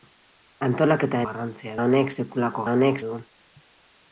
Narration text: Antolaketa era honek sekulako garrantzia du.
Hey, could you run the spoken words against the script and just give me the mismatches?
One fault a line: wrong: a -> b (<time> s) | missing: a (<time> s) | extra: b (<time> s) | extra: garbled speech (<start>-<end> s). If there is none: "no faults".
wrong: era -> garrantzia (1.3 s)
wrong: garrantzia -> honek (2.7 s)